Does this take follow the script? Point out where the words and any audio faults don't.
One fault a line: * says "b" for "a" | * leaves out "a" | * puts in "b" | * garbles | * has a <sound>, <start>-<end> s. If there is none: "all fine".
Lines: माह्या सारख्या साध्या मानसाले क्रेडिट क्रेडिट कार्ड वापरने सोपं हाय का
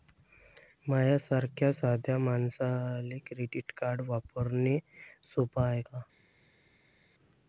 * leaves out "क्रेडिट"